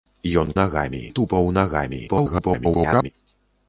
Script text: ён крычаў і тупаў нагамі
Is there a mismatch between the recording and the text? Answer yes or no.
yes